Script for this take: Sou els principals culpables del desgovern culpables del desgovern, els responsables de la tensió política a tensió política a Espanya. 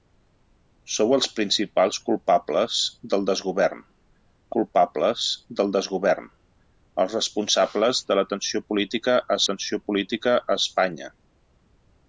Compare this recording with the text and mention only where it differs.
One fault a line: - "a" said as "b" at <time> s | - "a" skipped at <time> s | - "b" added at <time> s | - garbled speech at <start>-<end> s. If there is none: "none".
none